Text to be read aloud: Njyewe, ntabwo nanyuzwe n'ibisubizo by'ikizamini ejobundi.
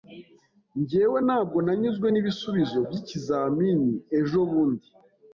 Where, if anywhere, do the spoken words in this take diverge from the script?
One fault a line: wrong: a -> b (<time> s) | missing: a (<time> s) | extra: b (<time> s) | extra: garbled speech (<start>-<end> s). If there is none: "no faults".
no faults